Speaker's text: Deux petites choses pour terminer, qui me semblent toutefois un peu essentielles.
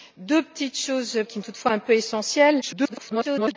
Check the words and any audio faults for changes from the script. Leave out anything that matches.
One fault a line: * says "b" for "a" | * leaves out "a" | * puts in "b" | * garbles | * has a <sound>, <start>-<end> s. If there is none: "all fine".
* leaves out "pour terminer"
* leaves out "semblent"
* garbles